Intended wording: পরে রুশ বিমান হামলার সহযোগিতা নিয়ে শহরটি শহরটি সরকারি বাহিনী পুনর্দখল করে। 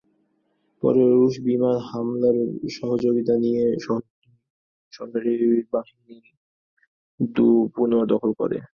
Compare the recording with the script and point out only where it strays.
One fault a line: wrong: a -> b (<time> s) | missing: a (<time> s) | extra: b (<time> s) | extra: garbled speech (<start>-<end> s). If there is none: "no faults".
missing: শহরটি (4.3 s)